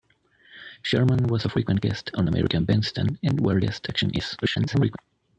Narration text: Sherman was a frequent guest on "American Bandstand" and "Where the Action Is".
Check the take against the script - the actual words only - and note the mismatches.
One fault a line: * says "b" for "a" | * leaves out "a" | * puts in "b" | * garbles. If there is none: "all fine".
* says "guest" for "the"
* garbles